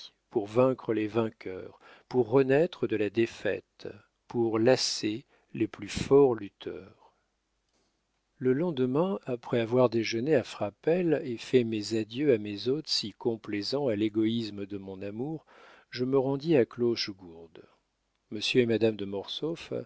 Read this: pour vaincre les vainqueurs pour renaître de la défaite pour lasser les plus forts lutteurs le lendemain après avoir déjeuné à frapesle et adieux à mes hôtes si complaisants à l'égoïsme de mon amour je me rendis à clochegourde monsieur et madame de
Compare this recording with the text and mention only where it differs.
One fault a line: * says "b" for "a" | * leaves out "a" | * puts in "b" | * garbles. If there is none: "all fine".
* puts in "fait mes"